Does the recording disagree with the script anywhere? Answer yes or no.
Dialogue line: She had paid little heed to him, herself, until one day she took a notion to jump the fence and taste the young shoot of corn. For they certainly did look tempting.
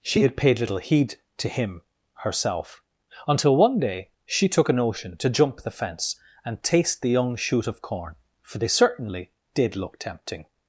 no